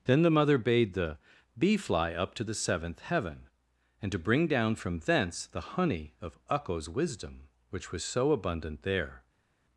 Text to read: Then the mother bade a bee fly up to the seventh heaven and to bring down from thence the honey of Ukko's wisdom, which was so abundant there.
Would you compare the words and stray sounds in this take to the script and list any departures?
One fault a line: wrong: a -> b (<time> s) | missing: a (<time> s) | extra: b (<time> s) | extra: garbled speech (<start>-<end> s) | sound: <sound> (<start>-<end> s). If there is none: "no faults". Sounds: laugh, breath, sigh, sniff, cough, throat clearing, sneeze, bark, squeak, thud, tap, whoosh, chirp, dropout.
wrong: a -> the (0.9 s)